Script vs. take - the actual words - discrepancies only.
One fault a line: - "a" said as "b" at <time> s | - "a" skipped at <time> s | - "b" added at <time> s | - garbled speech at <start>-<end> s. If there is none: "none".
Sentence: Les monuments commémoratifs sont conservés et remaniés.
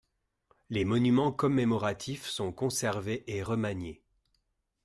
none